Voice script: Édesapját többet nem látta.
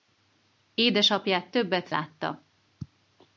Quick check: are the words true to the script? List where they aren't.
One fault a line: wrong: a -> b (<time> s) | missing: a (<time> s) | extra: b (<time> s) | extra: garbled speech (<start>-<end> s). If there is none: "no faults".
missing: nem (1.9 s)